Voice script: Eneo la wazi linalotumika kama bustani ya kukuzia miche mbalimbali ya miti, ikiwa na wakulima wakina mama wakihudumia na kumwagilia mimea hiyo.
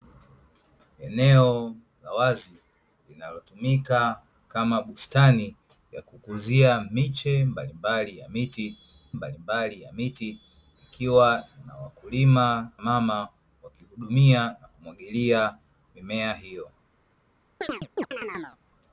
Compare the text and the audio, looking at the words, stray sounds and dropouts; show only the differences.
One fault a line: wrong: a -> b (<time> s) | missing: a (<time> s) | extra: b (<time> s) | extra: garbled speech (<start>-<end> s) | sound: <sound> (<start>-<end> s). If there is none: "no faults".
extra: mbalimbali ya miti (9.1 s)
missing: wakina (12.7 s)
sound: chirp (17.6-18.6 s)